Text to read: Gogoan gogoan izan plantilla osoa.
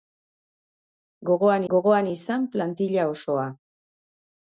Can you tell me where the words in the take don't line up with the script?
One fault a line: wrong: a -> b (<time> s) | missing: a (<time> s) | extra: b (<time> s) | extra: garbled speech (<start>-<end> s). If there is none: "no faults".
no faults